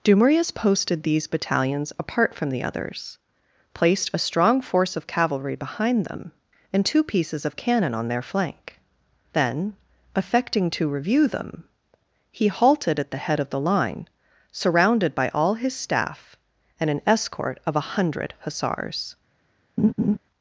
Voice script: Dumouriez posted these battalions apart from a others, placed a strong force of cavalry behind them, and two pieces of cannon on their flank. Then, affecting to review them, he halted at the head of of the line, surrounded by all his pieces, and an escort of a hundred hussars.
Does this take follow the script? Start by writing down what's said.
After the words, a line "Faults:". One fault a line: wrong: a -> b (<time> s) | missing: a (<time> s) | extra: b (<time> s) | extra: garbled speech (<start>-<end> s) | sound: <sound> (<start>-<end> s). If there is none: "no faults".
Dumouriez posted these battalions apart from the others, placed a strong force of cavalry behind them, and two pieces of cannon on their flank. Then, affecting to review them, he halted at the head of the line, surrounded by all his staff, and an escort of a hundred hussars.
Faults:
wrong: a -> the (2.5 s)
missing: of (13.5 s)
wrong: pieces -> staff (15.8 s)
sound: laugh (19.8-20.2 s)